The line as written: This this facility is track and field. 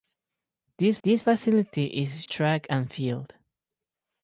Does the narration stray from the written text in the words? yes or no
no